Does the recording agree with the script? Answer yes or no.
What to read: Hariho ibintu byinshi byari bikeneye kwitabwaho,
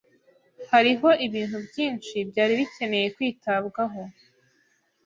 yes